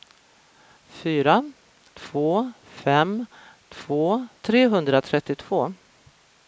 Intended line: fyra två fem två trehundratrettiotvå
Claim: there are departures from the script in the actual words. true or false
false